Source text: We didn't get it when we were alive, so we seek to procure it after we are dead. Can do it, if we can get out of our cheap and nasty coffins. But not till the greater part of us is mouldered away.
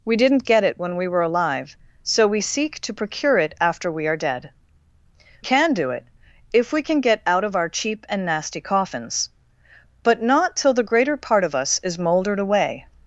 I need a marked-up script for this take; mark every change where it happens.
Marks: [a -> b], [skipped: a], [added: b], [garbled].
We didn't get it when we were alive, so we seek to procure it after we are dead. Can do it, if we can get out of our cheap and nasty coffins. But not till the greater part of us is mouldered away.